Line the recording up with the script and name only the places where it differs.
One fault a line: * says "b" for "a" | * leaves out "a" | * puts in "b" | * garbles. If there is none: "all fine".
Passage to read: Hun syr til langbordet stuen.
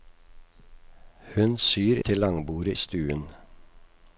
all fine